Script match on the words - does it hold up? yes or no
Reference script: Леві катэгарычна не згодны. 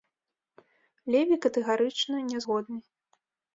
yes